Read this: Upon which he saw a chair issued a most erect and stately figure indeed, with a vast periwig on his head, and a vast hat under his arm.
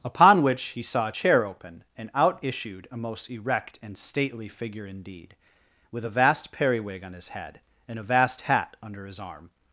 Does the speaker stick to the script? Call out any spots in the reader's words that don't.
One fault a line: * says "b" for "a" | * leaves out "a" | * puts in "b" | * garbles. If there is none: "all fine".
* puts in "open and out"